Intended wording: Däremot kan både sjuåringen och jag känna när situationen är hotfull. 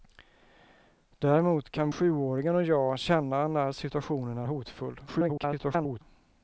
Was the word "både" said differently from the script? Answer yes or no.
yes